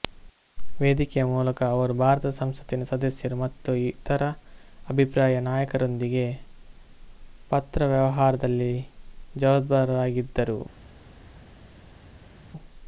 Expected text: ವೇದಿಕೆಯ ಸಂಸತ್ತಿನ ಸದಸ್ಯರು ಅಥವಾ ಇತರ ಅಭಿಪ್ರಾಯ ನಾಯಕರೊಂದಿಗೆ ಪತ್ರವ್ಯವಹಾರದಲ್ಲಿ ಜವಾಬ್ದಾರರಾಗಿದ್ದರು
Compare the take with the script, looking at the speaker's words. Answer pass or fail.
fail